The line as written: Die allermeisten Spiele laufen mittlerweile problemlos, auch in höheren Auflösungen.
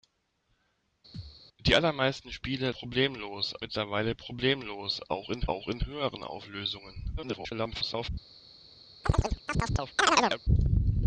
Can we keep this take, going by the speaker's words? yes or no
no